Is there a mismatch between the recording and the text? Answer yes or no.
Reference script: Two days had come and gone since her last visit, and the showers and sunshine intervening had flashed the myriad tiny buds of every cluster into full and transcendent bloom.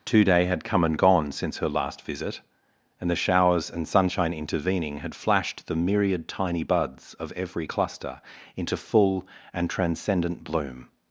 yes